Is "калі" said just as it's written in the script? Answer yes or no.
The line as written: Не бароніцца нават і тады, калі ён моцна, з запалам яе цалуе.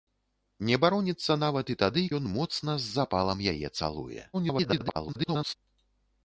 no